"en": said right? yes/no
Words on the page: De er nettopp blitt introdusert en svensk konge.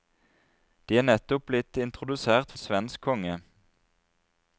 yes